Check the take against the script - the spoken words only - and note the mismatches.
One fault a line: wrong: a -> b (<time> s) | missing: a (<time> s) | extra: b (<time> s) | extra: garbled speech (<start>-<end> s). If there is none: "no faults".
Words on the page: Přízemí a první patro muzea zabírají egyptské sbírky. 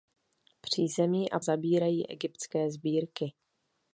missing: první patro muzea (1.4 s)